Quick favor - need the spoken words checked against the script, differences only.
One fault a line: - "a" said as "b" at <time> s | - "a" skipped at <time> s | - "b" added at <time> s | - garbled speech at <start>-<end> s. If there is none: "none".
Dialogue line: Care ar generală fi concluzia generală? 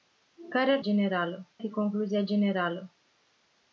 none